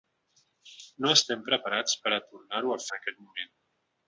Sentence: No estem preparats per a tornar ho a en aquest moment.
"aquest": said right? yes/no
yes